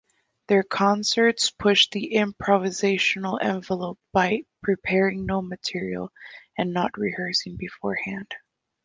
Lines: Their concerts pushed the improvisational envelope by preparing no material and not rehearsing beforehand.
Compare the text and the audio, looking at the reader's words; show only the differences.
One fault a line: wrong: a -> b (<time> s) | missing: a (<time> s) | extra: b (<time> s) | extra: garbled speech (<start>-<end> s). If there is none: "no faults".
no faults